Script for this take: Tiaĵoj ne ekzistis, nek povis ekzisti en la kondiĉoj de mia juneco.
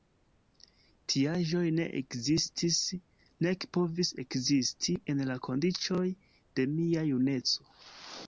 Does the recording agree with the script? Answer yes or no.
yes